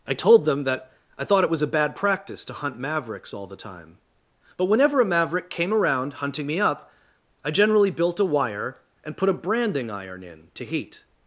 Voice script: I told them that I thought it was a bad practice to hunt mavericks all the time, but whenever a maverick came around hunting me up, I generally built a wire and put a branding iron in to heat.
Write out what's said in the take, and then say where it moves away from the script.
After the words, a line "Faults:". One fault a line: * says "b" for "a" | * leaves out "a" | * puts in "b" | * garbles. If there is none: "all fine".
I told them that I thought it was a bad practice to hunt mavericks all the time, but whenever a maverick came around hunting me up, I generally built a wire and put a branding iron in to heat.
Faults:
all fine